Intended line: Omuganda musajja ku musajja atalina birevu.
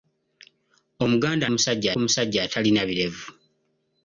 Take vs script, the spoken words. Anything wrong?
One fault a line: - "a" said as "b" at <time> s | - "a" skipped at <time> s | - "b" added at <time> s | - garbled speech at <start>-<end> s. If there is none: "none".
none